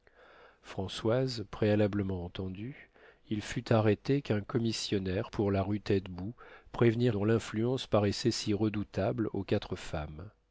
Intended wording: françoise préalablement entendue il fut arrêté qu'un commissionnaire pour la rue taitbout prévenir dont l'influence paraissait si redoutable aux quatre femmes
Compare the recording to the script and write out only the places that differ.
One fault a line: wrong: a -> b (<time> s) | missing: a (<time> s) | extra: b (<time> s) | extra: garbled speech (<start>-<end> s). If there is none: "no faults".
no faults